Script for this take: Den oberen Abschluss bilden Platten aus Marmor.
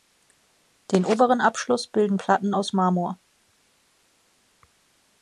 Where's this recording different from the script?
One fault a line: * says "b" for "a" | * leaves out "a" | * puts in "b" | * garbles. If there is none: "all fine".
all fine